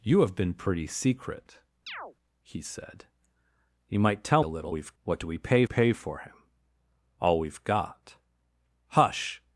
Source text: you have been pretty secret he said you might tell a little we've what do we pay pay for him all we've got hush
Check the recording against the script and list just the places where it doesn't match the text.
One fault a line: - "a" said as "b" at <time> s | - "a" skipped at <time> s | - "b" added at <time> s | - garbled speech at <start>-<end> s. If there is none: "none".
none